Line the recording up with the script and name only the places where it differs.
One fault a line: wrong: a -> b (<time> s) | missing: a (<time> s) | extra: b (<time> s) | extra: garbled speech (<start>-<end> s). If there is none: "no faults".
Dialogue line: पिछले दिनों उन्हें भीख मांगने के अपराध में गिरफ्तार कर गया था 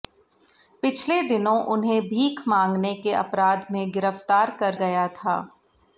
no faults